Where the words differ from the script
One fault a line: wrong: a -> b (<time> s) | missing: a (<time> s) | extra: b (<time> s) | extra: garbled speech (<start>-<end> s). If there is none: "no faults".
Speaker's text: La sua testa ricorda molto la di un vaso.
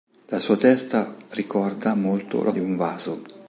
no faults